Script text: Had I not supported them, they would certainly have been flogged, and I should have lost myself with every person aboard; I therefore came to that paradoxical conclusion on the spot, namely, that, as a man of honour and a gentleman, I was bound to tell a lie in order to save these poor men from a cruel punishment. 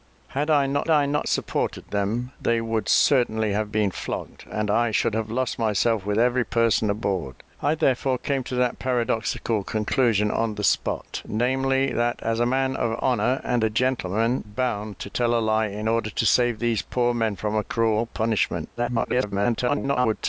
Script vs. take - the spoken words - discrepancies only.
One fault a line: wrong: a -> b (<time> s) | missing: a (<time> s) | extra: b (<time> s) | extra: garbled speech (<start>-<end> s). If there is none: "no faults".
extra: I not (0.9 s)
missing: I was (14.5 s)
extra: garbled speech (18.8-20.2 s)